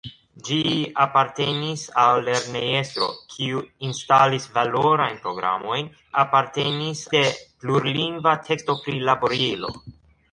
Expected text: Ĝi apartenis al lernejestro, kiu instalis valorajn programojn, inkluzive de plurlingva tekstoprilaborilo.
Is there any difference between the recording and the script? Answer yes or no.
yes